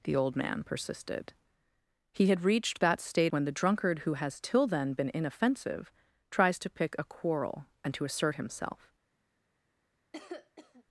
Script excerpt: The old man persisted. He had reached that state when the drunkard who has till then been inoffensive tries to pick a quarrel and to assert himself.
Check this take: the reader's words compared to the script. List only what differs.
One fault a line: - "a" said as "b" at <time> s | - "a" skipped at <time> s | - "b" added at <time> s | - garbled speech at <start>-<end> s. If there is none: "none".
none